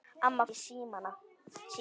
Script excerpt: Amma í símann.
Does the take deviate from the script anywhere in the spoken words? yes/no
no